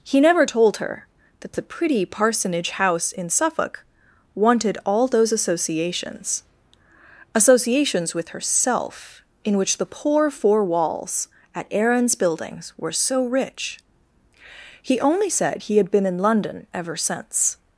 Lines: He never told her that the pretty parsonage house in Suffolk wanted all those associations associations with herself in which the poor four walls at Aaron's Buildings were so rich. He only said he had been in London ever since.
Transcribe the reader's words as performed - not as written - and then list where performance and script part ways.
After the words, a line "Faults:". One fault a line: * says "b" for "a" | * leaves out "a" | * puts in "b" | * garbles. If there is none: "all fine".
He never told her that the pretty parsonage house in Suffolk wanted all those associations associations with herself in which the poor four walls at Aaron's Buildings were so rich. He only said he had been in London ever since.
Faults:
all fine